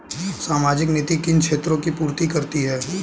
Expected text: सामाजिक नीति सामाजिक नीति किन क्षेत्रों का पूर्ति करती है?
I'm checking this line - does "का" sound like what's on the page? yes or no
no